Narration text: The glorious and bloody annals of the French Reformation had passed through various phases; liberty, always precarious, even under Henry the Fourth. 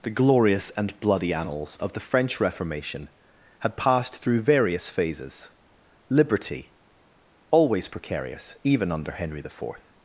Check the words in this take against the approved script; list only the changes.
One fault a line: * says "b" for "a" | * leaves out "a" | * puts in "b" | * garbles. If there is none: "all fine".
all fine